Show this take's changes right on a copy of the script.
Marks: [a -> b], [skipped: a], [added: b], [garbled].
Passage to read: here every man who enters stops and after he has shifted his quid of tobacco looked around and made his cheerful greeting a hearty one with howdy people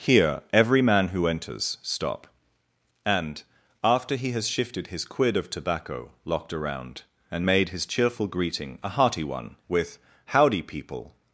here every man who enters [stops -> stop] and after he has shifted his quid of tobacco [looked -> locked] around and made his cheerful greeting a hearty one with howdy people